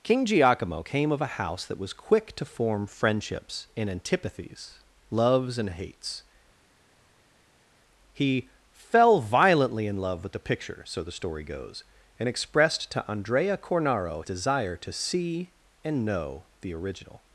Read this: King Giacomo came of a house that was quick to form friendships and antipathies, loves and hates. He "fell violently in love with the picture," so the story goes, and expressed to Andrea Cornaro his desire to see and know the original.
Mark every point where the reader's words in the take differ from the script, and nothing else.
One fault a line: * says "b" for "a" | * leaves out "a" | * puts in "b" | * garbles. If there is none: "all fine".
* leaves out "his"